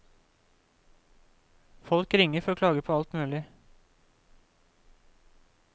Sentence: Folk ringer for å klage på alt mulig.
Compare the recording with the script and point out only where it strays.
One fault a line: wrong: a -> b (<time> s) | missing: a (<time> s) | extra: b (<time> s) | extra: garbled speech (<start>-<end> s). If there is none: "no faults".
no faults